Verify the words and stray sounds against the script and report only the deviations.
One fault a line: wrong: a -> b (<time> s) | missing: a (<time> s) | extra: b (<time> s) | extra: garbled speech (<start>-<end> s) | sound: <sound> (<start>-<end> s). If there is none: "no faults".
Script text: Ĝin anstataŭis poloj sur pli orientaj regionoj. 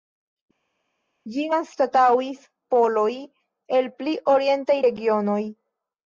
wrong: sur -> el (3.8 s)